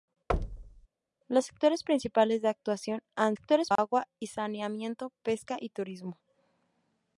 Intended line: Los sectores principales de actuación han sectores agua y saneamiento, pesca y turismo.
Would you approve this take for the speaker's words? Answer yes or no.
yes